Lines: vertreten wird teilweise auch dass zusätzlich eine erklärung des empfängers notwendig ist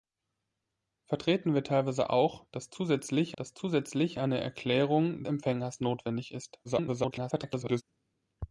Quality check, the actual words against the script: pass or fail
fail